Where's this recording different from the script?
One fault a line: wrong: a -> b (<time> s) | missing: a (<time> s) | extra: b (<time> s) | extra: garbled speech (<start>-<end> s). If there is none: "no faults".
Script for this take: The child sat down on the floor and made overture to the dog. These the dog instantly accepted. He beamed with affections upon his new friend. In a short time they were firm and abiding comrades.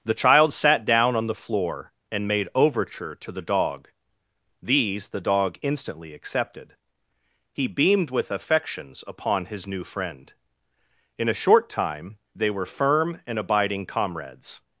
no faults